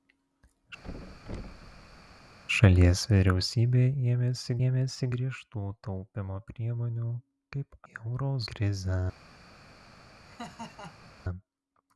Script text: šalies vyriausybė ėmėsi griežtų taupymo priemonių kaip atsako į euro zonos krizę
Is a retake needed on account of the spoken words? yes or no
yes